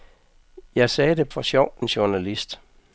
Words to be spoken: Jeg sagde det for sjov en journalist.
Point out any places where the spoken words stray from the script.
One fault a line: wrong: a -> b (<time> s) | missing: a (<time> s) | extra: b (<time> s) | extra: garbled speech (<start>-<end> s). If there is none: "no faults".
no faults